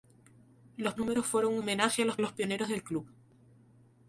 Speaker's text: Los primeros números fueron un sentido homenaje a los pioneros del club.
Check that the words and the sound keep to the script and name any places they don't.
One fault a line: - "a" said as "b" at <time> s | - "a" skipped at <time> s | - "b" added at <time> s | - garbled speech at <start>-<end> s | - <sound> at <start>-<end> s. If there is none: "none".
- "primeros" skipped at 0.9 s
- "sentido" skipped at 1.6 s
- "los" added at 2.2 s